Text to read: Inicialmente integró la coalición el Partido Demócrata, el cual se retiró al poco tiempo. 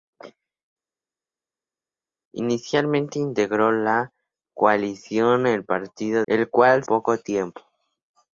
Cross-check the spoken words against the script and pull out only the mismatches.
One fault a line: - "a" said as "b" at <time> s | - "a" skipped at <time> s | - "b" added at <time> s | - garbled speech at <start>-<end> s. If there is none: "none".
- "Demócrata" skipped at 6.2 s
- "se retiró al" skipped at 6.8 s